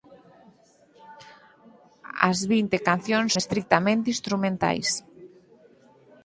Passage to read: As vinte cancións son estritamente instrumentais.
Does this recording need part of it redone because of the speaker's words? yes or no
yes